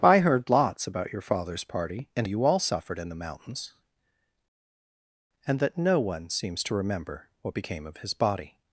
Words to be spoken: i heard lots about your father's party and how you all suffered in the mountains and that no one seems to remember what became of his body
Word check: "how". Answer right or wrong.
wrong